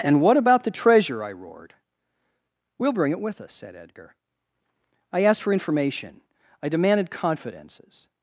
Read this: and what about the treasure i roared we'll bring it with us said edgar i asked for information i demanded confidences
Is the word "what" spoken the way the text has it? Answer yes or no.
yes